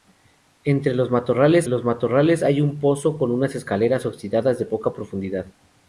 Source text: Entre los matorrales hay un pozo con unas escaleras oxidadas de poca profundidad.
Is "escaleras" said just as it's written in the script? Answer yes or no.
yes